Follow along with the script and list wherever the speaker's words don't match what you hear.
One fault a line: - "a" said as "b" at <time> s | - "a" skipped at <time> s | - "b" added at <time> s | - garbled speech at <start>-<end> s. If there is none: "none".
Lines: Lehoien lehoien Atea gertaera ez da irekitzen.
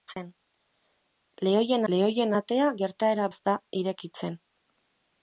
none